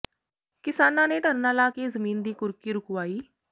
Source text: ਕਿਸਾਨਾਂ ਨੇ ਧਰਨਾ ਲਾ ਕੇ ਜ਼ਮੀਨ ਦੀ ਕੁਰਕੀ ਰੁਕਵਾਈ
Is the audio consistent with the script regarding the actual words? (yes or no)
yes